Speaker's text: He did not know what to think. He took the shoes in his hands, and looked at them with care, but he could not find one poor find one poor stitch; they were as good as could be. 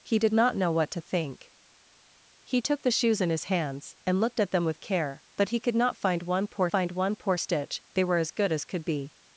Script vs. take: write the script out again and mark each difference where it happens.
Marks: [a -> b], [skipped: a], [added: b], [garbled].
He did not know what to think. He took the shoes in his hands, and looked at them with care, but he could not find one poor find one poor stitch; they were as good as could be.